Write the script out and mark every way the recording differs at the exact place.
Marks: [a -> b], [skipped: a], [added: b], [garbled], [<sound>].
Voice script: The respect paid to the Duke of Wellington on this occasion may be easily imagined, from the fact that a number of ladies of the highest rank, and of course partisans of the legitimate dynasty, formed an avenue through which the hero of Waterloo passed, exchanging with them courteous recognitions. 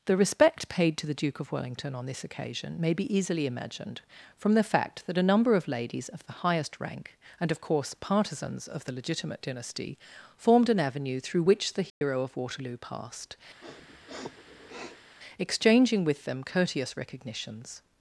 The respect paid to the Duke of Wellington on this occasion may be easily imagined, from the fact that a number of ladies of the highest rank, and of course partisans of the legitimate dynasty, formed an avenue through which the hero [dropout] of Waterloo passed, [sniff] exchanging with them courteous recognitions.